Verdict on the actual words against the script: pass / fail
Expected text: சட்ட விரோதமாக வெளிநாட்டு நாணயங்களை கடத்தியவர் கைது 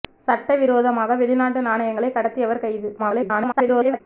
fail